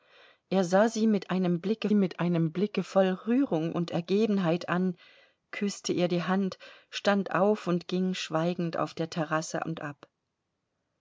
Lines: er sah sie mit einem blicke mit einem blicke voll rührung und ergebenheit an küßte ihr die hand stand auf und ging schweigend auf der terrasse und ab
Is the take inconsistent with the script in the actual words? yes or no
no